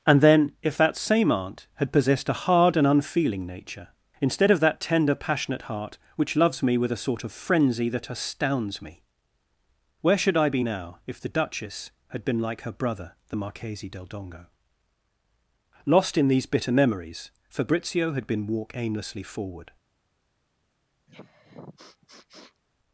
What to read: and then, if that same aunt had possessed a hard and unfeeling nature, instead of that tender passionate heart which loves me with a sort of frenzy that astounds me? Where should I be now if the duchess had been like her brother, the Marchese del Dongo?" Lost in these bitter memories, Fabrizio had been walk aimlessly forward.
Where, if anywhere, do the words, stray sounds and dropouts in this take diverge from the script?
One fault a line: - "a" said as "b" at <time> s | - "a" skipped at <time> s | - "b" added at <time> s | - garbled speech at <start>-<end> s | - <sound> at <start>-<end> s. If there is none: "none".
- sniff at 21.1-22.6 s